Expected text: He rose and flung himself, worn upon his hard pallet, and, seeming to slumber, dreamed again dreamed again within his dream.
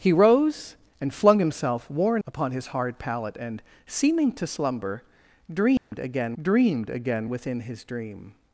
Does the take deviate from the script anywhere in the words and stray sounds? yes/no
yes